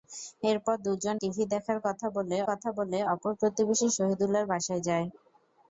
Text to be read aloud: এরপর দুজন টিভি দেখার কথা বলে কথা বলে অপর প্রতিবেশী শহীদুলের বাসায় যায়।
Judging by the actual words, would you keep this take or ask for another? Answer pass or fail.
pass